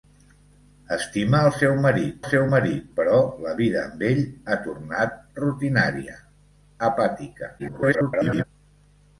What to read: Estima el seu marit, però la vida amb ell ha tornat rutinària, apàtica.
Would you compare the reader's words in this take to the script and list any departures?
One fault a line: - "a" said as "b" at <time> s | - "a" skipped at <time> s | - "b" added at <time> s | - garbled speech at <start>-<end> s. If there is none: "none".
- "seu marit" added at 2.3 s
- garbled speech at 7.6-8.4 s